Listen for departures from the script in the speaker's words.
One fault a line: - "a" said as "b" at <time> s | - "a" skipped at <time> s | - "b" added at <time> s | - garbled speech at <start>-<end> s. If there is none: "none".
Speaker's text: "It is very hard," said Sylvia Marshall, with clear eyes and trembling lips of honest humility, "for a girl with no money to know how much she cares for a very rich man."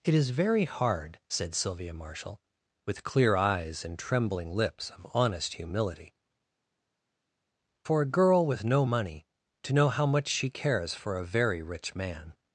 none